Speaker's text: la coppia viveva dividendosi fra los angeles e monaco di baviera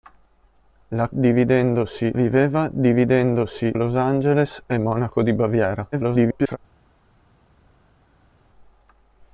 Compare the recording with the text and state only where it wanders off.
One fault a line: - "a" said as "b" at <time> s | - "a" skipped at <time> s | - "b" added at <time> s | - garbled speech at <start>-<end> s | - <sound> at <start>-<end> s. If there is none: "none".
- "coppia" said as "dividendosi" at 1.1 s
- "fra" skipped at 3.7 s
- garbled speech at 5.9-6.6 s